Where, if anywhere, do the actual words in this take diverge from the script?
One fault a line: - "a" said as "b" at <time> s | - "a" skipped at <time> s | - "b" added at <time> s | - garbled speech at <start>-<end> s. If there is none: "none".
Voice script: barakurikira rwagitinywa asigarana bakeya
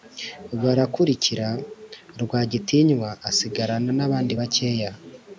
- "nabandi" added at 4.0 s